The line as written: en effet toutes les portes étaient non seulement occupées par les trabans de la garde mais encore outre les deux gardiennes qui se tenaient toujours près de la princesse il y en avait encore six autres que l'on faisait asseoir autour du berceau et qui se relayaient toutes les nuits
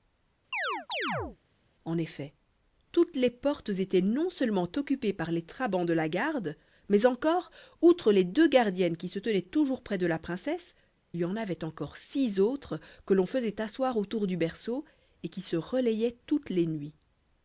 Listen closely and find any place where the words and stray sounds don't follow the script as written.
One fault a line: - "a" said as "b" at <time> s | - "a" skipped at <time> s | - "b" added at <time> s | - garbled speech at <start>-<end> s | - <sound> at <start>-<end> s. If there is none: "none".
- chirp at 0.5-1.4 s
- "il" skipped at 10.8 s